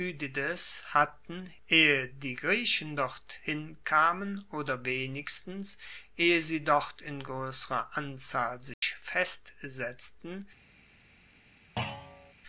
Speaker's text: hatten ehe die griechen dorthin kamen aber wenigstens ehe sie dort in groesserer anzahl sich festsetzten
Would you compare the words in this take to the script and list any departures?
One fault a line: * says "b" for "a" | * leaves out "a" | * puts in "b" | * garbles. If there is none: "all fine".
* says "oder" for "aber"